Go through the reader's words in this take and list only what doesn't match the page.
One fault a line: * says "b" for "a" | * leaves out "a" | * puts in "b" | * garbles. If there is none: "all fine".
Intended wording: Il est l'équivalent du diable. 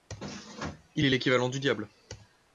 all fine